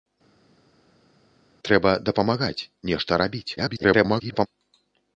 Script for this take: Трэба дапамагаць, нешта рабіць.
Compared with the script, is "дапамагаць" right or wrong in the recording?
right